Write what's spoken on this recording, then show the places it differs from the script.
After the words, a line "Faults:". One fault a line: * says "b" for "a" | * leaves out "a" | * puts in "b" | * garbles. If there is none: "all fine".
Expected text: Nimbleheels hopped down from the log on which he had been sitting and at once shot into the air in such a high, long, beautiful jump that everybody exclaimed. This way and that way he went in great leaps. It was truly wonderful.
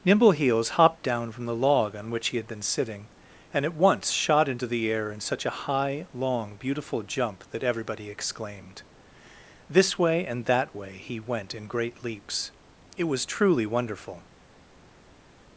Nimbleheels hopped down from the log on which he had been sitting and at once shot into the air in such a high, long, beautiful jump that everybody exclaimed. This way and that way he went in great leaps. It was truly wonderful.
Faults:
all fine